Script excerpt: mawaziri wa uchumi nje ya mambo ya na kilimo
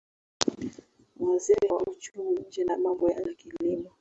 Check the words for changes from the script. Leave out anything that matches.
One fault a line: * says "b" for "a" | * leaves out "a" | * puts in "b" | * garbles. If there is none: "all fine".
all fine